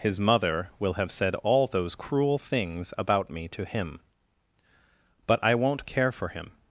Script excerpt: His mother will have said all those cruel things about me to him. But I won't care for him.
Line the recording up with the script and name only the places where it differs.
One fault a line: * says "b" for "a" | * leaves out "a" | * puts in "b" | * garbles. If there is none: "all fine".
all fine